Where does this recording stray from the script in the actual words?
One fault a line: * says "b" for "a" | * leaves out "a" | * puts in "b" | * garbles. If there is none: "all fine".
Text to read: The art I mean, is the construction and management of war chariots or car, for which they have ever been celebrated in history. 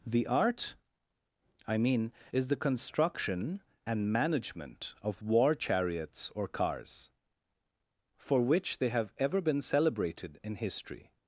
* says "cars" for "car"